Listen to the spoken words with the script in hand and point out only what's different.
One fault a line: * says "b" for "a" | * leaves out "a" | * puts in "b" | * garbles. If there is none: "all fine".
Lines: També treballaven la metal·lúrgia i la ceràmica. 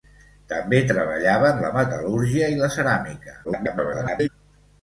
* garbles